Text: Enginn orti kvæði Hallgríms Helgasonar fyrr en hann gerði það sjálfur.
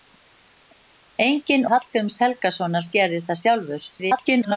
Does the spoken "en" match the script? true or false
false